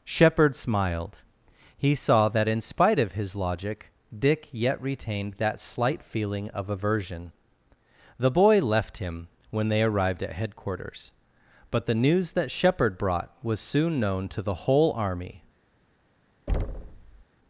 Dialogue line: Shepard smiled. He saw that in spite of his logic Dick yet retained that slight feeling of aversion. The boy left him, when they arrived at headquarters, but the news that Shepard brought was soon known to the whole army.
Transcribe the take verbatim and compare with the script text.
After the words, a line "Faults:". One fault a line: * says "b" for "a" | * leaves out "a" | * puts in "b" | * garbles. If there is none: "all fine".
Shepard smiled. He saw that in spite of his logic Dick yet retained that slight feeling of aversion. The boy left him, when they arrived at headquarters, but the news that Shepard brought was soon known to the whole army.
Faults:
all fine